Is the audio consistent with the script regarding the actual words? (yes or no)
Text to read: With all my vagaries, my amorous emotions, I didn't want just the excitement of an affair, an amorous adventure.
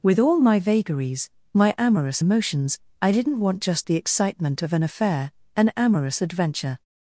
yes